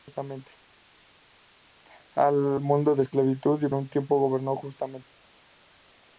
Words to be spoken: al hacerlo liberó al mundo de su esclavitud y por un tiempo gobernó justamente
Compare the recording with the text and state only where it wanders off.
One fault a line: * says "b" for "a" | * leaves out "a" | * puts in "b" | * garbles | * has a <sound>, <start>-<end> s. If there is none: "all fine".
* leaves out "hacerlo liberó"
* leaves out "su"
* leaves out "por"